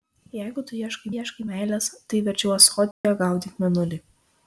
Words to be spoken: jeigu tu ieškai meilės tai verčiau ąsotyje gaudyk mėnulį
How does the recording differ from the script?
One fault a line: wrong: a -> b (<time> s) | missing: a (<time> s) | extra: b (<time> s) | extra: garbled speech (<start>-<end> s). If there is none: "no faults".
extra: ieškai (1.1 s)